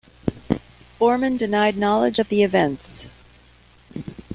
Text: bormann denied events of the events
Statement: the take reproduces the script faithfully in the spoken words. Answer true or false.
false